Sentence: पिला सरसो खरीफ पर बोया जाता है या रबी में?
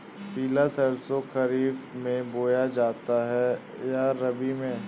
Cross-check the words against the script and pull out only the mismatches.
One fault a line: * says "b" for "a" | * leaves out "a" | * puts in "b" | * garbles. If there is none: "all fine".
* says "में" for "पर"